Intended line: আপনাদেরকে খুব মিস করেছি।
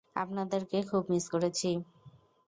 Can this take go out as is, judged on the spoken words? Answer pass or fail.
pass